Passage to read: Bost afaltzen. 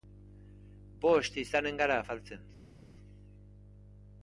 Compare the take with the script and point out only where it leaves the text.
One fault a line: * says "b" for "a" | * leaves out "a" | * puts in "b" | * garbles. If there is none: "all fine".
* puts in "izanen gara"